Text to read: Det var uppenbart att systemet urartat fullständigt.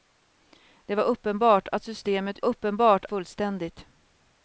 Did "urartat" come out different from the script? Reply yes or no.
yes